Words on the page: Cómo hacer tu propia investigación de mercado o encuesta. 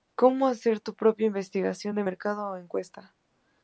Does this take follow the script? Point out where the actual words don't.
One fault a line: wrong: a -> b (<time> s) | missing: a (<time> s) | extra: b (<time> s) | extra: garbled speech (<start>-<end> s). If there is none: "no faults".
no faults